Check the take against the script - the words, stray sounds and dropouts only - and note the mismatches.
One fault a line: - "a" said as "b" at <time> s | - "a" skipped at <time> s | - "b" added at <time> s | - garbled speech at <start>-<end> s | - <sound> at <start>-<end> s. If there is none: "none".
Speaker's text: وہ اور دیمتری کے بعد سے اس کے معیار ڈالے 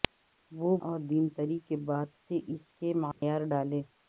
- dropout at 3.1-3.2 s